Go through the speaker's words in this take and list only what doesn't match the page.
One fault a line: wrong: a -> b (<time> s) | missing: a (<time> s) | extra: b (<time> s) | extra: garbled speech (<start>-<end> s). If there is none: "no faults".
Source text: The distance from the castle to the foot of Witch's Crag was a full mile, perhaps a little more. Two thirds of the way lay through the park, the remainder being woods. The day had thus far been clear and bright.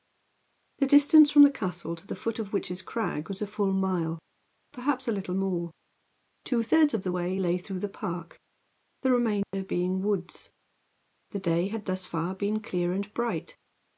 no faults